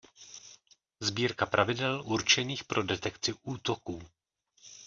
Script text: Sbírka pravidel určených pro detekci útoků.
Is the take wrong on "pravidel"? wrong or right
right